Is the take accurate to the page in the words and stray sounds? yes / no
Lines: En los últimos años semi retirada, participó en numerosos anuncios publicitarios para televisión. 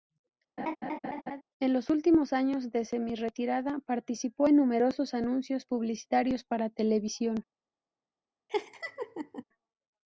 no